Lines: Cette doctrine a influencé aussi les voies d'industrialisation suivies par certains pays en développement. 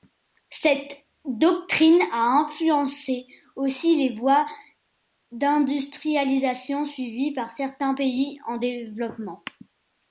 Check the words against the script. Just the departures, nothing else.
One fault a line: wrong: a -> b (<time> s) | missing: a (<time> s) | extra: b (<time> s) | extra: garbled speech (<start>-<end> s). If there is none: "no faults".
no faults